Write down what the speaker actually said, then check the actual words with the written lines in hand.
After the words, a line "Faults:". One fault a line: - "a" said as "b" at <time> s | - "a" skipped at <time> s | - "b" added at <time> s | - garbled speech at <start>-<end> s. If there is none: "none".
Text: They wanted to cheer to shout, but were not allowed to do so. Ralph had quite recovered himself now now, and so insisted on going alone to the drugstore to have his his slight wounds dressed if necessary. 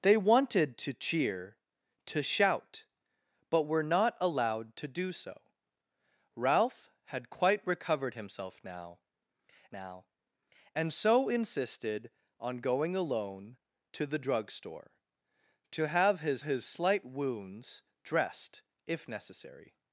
They wanted to cheer to shout, but were not allowed to do so. Ralph had quite recovered himself now now, and so insisted on going alone to the drugstore to have his his slight wounds dressed if necessary.
Faults:
none